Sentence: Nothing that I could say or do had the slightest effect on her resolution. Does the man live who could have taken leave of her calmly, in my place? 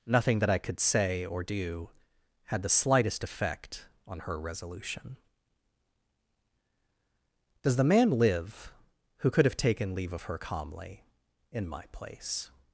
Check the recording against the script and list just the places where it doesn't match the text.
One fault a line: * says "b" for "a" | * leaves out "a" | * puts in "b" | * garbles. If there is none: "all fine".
all fine